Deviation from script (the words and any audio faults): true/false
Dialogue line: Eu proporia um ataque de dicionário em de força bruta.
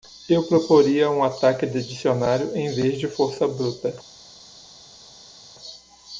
true